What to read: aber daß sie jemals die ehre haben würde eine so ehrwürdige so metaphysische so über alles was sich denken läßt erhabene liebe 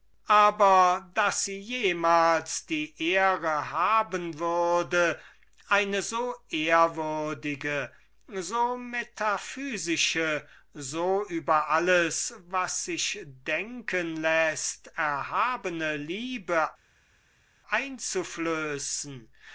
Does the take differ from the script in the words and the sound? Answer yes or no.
no